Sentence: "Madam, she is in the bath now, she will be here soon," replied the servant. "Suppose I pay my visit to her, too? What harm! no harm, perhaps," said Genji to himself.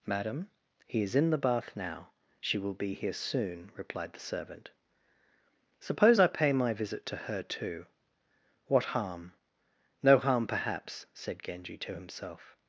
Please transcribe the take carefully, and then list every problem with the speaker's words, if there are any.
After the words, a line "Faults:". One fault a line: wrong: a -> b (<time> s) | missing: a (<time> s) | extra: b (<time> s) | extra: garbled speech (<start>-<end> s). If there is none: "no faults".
"Madam, he is in the bath now, she will be here soon," replied the servant. "Suppose I pay my visit to her, too? What harm! no harm, perhaps," said Genji to himself.
Faults:
wrong: she -> he (0.9 s)